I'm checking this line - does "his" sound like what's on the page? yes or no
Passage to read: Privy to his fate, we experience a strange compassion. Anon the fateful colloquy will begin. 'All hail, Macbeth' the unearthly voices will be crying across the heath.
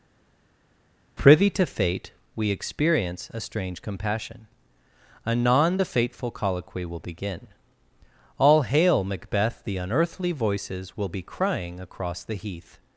no